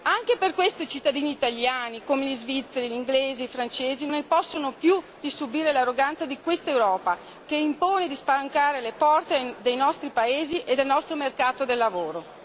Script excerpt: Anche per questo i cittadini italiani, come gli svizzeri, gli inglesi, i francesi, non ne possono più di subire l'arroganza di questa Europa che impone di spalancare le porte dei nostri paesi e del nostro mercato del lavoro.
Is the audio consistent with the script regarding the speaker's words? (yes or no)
no